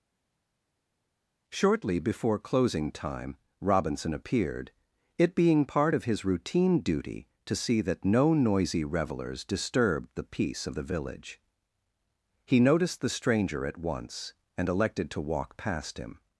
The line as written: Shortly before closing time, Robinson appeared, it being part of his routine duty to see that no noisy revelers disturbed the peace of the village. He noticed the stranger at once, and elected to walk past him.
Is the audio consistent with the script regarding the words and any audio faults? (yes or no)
yes